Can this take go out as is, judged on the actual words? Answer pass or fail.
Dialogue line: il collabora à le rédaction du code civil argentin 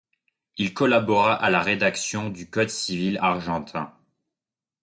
fail